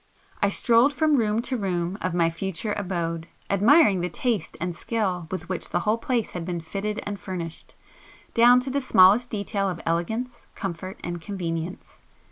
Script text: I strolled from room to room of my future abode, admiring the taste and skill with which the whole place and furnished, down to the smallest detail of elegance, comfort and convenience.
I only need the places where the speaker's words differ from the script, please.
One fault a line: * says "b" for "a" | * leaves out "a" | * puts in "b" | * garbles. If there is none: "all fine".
* puts in "had been fitted"